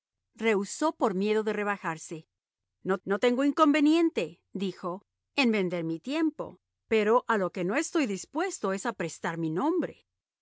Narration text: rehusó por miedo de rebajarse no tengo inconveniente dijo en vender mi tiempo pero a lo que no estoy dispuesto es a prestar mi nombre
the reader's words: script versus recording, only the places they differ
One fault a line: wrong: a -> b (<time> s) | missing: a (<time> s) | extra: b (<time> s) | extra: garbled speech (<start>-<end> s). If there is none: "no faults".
extra: no (3.0 s)